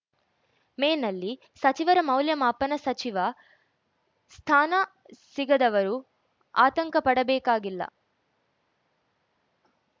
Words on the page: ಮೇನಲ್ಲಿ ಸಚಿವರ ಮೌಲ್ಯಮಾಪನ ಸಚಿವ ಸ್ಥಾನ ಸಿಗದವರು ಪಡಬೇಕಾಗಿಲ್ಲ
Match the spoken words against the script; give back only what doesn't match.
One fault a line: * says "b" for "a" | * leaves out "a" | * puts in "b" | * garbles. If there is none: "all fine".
* puts in "ಆತಂಕ"